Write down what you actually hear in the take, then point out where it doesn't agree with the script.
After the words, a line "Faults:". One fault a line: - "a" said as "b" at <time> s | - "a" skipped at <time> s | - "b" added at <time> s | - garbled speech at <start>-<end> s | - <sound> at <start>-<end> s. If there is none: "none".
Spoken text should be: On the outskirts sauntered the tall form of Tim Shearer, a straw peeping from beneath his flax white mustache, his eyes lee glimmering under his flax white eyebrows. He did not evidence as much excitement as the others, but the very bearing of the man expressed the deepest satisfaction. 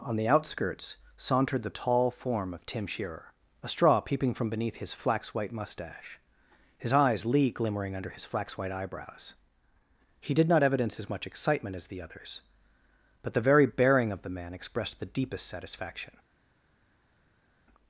On the outskirts sauntered the tall form of Tim Shearer, a straw peeping from beneath his flax white mustache, his eyes lee glimmering under his flax white eyebrows. He did not evidence as much excitement as the others, but the very bearing of the man expressed the deepest satisfaction.
Faults:
none